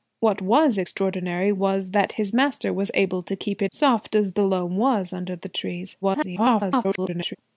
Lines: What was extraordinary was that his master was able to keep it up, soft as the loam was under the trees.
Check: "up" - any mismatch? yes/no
yes